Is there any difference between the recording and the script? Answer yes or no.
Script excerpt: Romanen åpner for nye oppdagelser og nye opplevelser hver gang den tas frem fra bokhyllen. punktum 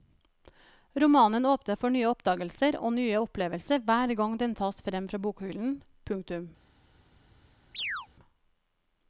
no